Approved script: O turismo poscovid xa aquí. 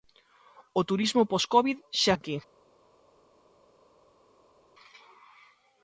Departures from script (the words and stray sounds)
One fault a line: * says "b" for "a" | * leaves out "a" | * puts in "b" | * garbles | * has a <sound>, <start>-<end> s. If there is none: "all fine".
all fine